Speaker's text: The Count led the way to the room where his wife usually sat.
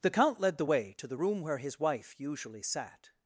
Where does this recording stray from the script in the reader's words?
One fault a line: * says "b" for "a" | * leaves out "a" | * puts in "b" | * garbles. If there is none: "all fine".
all fine